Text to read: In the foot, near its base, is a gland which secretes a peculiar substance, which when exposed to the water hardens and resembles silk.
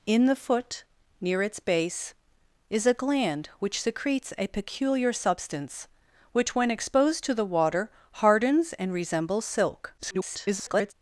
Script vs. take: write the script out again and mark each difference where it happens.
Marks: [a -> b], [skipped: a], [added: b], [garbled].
In the foot, near its base, is a gland which secretes a peculiar substance, which when exposed to the water hardens and resembles silk. [garbled]